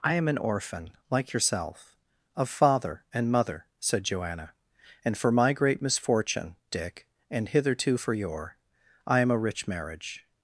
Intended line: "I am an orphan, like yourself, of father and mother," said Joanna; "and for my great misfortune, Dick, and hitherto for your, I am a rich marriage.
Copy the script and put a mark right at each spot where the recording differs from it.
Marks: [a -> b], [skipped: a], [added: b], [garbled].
"I am an orphan, like yourself, of father and mother," said Joanna; "and for my great misfortune, Dick, and hitherto for your, I am a rich marriage.